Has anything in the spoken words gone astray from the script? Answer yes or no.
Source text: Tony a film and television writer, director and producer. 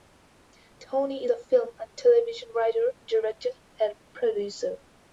no